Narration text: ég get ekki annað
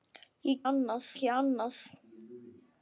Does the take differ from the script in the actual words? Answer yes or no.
yes